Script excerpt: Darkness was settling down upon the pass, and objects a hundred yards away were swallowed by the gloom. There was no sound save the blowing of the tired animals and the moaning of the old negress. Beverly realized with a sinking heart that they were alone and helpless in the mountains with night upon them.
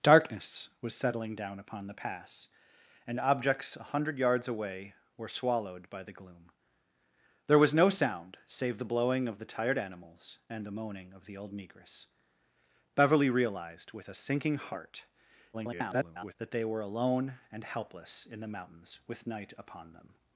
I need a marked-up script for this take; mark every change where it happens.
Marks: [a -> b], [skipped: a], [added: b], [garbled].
Darkness was settling down upon the pass, and objects a hundred yards away were swallowed by the gloom. There was no sound save the blowing of the tired animals and the moaning of the old negress. Beverly realized with a sinking heart [garbled] that they were alone and helpless in the mountains with night upon them.